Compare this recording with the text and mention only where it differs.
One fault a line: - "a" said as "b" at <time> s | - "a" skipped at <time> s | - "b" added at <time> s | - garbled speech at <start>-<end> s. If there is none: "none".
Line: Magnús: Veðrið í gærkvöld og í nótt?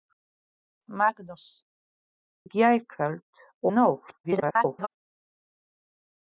- "Veðrið" skipped at 1.4 s
- "og" skipped at 3.5 s
- garbled speech at 4.2-4.9 s